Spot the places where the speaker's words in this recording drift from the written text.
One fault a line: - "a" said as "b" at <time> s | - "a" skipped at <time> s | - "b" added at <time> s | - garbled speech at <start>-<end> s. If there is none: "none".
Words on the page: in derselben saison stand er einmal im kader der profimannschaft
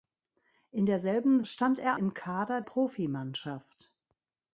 - "saison" skipped at 1.4 s
- "einmal" skipped at 2.0 s
- "der" skipped at 2.6 s